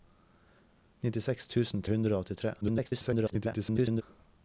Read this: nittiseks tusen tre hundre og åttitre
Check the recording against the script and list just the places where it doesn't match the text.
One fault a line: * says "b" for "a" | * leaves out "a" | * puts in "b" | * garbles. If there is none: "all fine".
* leaves out "tre"
* garbles